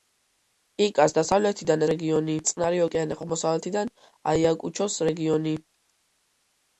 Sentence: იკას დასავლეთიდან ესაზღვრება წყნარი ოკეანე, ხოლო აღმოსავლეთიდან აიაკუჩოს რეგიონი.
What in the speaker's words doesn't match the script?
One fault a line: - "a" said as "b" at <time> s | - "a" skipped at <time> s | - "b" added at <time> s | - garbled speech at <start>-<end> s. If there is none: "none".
- "ესაზღვრება" said as "რეგიონი" at 1.9 s
- "ხოლო" skipped at 3.2 s